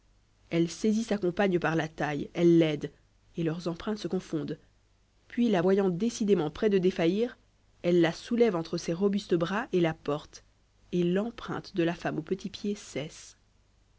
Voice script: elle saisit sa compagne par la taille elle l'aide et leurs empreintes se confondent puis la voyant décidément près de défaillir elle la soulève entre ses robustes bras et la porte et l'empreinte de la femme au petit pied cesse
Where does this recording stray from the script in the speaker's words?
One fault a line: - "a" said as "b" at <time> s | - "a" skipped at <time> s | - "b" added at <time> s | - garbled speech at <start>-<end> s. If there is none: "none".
none